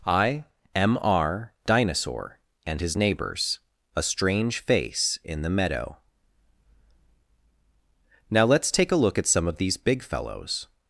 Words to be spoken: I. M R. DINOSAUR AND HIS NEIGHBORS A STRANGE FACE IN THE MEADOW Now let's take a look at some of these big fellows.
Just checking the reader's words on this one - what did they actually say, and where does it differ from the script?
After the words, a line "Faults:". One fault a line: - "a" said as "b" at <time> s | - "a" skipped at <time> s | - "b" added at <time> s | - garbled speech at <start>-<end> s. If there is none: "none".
I. M R. DINOSAUR AND HIS NEIGHBORS A STRANGE FACE IN THE MEADOW Now let's take a look at some of these big fellows.
Faults:
none